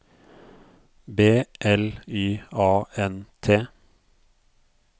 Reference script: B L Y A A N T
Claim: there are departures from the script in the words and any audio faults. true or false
true